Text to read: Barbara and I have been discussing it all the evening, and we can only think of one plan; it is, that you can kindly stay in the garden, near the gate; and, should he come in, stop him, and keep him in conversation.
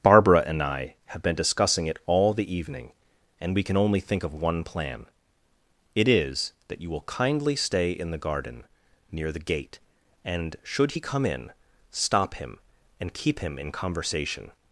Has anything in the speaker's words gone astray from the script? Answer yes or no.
yes